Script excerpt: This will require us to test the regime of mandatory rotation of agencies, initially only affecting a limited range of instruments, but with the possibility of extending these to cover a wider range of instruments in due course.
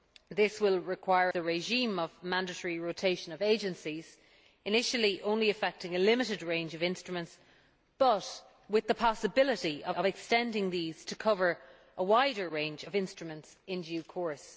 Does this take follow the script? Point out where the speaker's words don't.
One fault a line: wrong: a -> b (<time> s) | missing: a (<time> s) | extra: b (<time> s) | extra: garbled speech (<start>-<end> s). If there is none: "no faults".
missing: us to test (1.3 s)
extra: of (9.9 s)